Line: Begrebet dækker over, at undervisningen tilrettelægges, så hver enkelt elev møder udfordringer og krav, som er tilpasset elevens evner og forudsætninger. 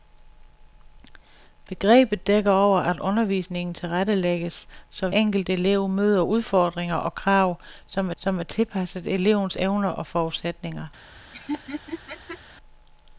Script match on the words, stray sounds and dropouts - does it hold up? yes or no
no